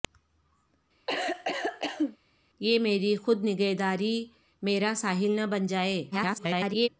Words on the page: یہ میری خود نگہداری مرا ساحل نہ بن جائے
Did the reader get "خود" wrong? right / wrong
right